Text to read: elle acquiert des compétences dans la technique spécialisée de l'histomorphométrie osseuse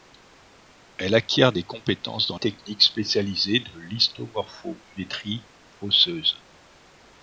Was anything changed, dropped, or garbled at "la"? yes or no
yes